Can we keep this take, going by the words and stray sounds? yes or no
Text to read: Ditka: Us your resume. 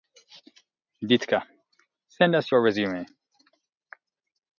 no